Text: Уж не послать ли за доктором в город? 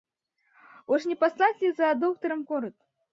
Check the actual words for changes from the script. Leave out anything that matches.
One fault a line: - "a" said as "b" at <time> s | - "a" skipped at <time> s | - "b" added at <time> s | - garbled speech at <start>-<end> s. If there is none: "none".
none